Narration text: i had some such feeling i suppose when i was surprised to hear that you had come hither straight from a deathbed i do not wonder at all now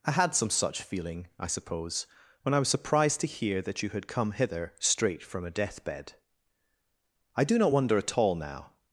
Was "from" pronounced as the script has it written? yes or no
yes